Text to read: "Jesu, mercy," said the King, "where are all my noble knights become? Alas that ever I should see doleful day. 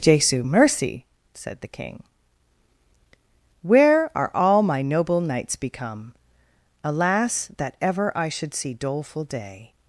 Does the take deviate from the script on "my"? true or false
false